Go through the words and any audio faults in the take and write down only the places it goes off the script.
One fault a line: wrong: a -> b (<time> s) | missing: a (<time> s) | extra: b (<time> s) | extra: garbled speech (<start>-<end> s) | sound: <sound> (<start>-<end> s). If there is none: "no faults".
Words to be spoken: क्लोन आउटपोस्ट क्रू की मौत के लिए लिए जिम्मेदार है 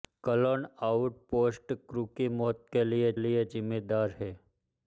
no faults